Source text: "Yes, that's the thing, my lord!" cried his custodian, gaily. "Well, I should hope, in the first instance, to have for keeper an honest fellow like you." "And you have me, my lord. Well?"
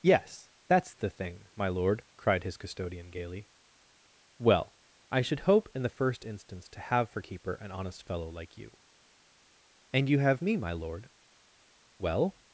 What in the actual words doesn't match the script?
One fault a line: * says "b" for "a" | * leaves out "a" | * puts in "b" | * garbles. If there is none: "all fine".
all fine